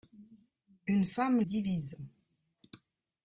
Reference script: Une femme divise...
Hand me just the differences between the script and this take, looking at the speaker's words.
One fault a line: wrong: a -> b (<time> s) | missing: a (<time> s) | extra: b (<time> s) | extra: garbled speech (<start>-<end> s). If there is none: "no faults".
no faults